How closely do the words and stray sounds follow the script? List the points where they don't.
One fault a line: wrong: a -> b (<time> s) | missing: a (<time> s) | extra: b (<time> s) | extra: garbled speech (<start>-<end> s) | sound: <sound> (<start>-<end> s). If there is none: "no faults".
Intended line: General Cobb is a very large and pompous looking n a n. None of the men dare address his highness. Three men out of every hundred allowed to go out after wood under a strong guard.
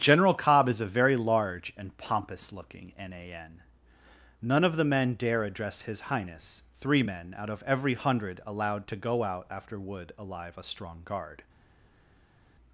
wrong: under -> alive (10.2 s)